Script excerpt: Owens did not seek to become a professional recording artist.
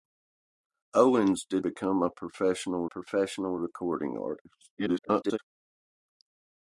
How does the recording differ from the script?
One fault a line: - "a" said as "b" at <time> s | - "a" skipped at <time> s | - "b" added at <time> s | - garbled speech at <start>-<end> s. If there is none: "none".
- "not seek to" skipped at 1.6 s
- "professional" added at 2.8 s
- garbled speech at 4.8-5.4 s